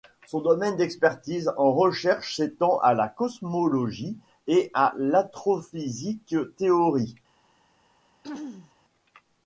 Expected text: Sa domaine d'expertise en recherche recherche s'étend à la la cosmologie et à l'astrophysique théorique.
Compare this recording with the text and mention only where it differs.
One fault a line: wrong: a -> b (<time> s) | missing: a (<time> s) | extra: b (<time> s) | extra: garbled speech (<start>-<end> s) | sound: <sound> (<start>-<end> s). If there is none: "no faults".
wrong: Sa -> Son (0.2 s)
missing: recherche (2.4 s)
missing: la (3.1 s)
sound: throat clearing (8.2-8.7 s)